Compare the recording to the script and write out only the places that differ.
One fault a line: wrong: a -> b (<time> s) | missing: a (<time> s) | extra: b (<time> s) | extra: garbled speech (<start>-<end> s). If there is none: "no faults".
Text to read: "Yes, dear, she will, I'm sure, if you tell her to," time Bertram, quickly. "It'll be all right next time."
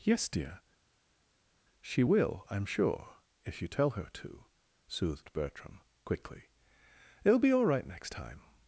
wrong: time -> soothed (4.9 s)